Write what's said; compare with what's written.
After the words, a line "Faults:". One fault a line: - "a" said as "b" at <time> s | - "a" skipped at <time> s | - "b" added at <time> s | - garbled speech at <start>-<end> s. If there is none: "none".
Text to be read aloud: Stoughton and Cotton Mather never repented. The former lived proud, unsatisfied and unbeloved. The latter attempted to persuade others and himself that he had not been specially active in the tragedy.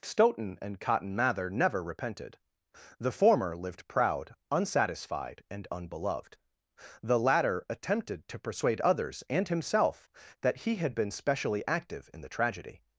Stoughton and Cotton Mather never repented. The former lived proud, unsatisfied and unbeloved. The latter attempted to persuade others and himself that he had been specially active in the tragedy.
Faults:
- "not" skipped at 10.9 s